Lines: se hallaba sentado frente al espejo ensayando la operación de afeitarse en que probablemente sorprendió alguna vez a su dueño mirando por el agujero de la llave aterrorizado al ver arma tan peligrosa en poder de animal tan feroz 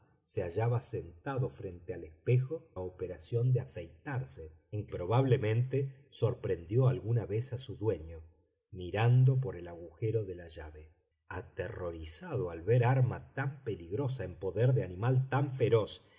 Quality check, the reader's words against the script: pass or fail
fail